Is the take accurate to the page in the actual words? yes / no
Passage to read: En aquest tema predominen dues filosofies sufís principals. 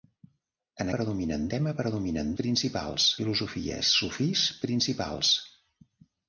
no